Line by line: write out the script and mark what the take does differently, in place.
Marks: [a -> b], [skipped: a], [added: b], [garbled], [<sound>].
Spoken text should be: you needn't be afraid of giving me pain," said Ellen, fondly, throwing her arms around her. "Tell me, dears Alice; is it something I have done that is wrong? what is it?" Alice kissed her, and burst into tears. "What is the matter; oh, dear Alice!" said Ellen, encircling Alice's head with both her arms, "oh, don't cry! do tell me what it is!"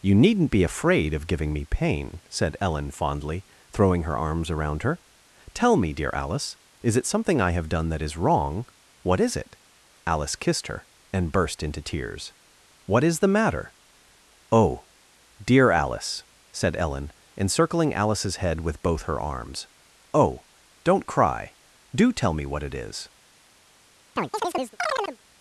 you needn't be afraid of giving me pain," said Ellen, fondly, throwing her arms around her. "Tell me, [dears -> dear] Alice; is it something I have done that is wrong? what is it?" Alice kissed her, and burst into tears. "What is the matter; oh, dear Alice!" said Ellen, encircling Alice's head with both her arms, "oh, don't cry! do tell me what it is!" [chirp]